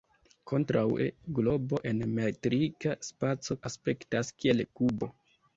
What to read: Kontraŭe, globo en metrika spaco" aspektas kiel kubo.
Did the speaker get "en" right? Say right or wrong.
right